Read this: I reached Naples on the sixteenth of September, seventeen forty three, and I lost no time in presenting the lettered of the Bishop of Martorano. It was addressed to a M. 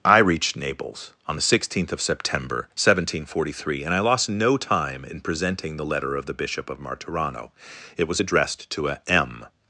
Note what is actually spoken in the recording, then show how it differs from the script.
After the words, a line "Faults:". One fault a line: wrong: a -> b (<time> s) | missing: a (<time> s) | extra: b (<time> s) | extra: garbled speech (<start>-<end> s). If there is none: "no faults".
I reached Naples on the sixteenth of September, seventeen forty three, and I lost no time in presenting the letter of the Bishop of Martorano. It was addressed to a M.
Faults:
wrong: lettered -> letter (5.8 s)